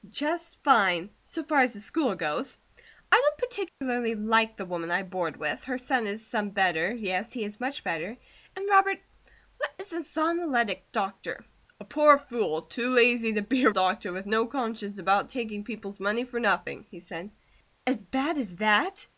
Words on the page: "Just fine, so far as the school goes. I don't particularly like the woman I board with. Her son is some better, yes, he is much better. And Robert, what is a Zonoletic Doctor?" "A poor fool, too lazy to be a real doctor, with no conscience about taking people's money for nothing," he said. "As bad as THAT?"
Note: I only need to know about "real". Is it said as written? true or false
false